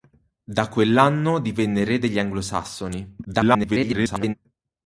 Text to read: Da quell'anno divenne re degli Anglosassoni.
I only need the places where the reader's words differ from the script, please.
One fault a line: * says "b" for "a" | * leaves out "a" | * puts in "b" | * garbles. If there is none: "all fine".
* garbles